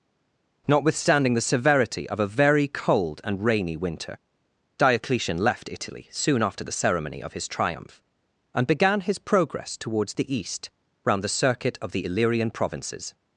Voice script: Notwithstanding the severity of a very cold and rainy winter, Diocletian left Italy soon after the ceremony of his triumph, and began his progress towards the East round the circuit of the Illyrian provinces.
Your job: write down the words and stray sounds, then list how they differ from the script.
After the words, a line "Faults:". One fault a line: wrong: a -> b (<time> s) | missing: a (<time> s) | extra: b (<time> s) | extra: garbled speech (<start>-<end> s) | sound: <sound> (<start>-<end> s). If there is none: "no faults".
Notwithstanding the severity of a very cold and rainy winter, Diocletian left Italy soon after the ceremony of his triumph, and began his progress towards the East round the circuit of the Illyrian provinces.
Faults:
no faults